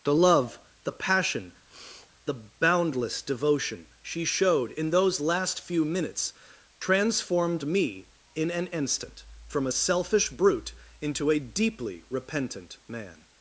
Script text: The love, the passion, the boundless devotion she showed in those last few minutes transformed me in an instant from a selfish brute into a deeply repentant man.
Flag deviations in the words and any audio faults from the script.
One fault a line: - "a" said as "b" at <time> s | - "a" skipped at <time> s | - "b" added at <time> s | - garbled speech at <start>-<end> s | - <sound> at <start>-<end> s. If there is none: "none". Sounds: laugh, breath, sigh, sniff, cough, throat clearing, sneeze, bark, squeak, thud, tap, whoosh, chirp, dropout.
- sniff at 1.7-2.1 s